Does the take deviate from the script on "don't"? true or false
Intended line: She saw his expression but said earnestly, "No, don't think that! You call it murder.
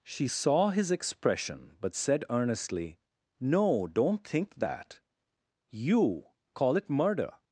false